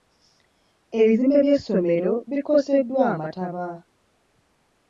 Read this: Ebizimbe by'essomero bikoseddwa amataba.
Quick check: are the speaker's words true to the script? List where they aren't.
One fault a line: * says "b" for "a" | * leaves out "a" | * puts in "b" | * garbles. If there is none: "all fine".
all fine